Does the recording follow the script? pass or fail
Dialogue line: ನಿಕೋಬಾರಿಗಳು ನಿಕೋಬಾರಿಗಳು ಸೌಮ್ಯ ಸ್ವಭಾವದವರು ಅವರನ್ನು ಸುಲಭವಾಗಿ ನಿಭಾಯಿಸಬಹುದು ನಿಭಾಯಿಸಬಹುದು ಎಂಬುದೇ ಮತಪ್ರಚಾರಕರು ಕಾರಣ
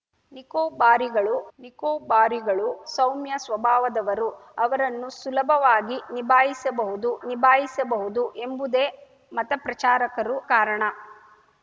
pass